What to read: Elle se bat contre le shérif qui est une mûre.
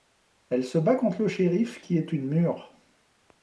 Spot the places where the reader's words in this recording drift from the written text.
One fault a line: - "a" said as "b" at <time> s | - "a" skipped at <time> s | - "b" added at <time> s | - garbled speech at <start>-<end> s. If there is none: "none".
none